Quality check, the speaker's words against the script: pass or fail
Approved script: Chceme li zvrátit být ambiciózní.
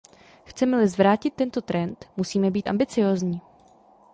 fail